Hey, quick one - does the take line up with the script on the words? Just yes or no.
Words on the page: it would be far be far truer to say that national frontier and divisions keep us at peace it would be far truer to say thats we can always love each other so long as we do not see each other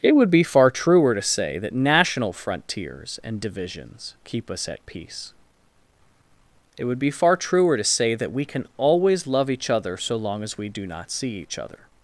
no